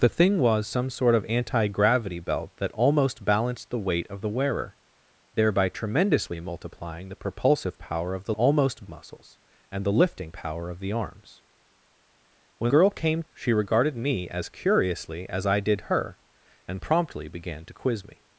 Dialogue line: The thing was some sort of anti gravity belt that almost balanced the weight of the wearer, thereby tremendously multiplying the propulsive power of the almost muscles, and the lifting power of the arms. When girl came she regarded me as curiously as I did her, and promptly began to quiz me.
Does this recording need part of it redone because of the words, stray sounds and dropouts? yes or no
no